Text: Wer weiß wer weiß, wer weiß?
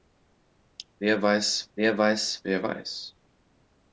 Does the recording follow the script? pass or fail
pass